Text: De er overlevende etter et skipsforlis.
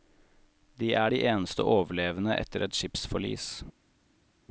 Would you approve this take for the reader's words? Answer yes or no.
no